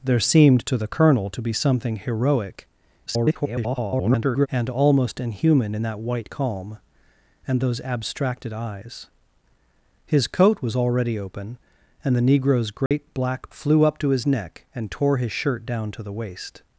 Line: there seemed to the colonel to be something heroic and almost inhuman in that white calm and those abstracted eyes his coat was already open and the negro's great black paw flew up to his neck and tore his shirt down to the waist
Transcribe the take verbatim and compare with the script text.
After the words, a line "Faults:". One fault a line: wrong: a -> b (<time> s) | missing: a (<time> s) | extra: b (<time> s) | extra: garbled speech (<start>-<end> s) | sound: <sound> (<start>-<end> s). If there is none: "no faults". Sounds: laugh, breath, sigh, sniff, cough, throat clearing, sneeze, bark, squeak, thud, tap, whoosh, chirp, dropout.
there seemed to the colonel to be something heroic [garbled] and almost inhuman in that white calm and those abstracted eyes his coat was already open and the negro's great black flew up to his neck and tore his shirt down to the waist
Faults:
extra: garbled speech (3.1-4.5 s)
sound: dropout (12.9-12.9 s)
missing: paw (13.5 s)